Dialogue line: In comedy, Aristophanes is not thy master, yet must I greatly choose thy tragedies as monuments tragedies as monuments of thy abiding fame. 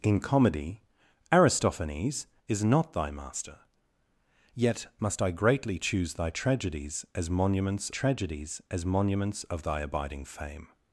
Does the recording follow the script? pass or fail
pass